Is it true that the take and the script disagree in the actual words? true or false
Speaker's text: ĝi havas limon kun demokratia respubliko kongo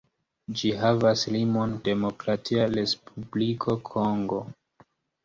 true